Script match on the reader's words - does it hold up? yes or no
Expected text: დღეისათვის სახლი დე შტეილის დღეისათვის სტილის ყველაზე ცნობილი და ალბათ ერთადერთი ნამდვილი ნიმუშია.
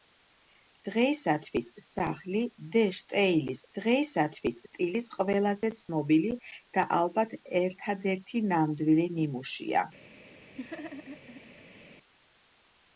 yes